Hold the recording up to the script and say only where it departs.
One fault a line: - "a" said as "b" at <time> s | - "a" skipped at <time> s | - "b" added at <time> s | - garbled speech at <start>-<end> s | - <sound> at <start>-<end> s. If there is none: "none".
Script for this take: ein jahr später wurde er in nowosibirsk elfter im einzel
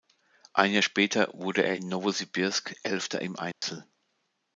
- dropout at 3.5-3.6 s